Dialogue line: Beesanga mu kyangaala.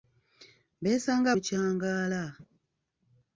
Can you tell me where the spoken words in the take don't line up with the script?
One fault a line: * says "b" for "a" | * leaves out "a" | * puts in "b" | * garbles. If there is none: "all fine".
all fine